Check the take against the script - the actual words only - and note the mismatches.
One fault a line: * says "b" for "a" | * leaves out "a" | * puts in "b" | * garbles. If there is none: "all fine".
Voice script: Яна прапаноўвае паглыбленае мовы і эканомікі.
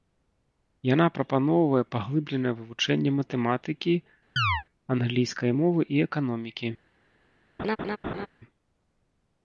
* puts in "вывучэнне матэматыкі англійскай"